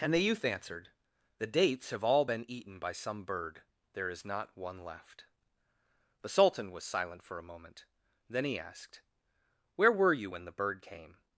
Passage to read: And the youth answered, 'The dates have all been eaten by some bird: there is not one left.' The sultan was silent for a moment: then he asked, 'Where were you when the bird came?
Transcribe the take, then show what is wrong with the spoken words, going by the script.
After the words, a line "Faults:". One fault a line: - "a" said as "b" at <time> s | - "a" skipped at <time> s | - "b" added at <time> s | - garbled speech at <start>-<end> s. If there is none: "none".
And the youth answered, 'The dates have all been eaten by some bird: there is not one left.' The sultan was silent for a moment: then he asked, 'Where were you when the bird came?
Faults:
none